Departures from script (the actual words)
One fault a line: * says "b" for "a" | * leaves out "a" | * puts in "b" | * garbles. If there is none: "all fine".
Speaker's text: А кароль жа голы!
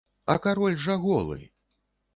all fine